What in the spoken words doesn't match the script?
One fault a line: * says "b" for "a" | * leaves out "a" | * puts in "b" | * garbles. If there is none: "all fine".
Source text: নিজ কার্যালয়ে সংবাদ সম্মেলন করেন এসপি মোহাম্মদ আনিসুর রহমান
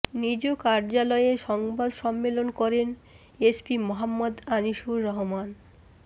all fine